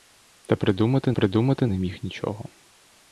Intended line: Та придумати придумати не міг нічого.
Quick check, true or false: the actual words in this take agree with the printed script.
true